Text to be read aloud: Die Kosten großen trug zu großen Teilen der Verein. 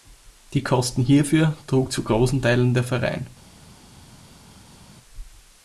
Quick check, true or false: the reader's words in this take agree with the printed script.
false